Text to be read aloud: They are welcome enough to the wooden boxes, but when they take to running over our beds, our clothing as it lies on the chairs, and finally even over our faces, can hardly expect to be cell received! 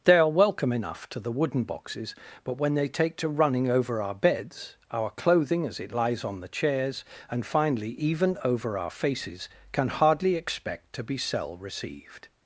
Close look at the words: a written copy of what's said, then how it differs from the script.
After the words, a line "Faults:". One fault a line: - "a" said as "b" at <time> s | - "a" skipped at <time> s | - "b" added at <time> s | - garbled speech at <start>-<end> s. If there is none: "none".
They are welcome enough to the wooden boxes, but when they take to running over our beds, our clothing as it lies on the chairs, and finally even over our faces, can hardly expect to be cell received!
Faults:
none